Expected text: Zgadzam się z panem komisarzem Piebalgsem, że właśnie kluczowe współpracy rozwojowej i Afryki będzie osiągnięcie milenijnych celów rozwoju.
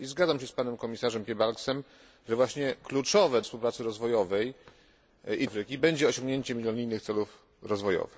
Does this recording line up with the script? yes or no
yes